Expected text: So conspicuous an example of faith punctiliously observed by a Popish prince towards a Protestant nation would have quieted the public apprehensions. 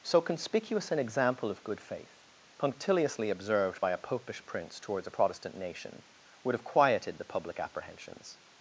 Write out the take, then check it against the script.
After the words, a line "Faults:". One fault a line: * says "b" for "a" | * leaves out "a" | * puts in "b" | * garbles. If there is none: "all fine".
So conspicuous an example of good faith punctiliously observed by a Popish prince towards a Protestant nation would have quieted the public apprehensions.
Faults:
* puts in "good"